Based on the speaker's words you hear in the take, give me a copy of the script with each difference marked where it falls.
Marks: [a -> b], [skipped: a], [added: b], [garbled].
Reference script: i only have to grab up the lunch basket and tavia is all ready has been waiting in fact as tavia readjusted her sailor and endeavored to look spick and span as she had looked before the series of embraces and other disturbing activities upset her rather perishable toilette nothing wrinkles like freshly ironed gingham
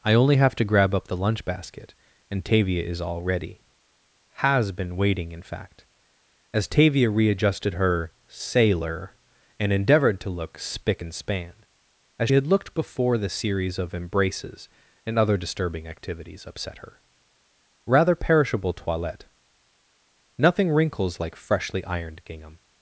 i only have to grab up the lunch basket and tavia is all ready has been waiting in fact as tavia readjusted her sailor and endeavored to look spick and span as [skipped: she] had looked before the series of embraces and other disturbing activities upset her rather perishable toilette nothing wrinkles like freshly ironed gingham